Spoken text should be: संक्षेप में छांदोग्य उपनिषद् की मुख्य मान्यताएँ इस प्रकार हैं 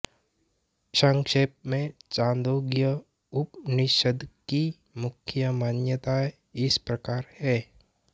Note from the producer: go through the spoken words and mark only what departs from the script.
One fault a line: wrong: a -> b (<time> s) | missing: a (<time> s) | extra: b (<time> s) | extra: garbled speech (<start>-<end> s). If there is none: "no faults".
no faults